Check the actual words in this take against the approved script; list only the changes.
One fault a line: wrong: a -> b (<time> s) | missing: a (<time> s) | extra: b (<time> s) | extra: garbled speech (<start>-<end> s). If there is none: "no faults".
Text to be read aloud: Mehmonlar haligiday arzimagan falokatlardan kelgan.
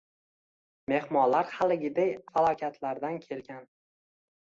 missing: arzimagan (2.1 s)